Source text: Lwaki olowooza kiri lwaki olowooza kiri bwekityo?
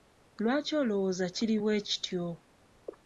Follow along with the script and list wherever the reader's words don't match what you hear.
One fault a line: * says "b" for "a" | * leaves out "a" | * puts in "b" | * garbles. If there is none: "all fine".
* leaves out "lwaki olowooza kiri"